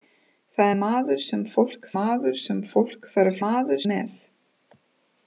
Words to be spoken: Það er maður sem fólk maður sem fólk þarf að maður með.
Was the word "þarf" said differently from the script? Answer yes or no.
no